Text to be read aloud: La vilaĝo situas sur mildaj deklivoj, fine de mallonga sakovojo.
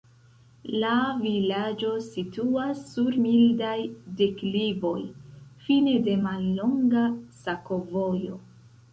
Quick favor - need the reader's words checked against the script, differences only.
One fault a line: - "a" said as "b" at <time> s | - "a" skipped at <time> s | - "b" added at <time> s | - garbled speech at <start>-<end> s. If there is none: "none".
none